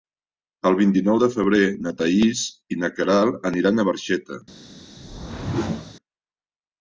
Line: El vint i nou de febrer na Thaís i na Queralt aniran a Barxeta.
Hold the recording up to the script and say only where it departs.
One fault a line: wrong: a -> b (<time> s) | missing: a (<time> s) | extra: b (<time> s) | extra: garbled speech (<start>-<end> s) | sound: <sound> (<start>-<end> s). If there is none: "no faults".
sound: whoosh (5.0-5.9 s)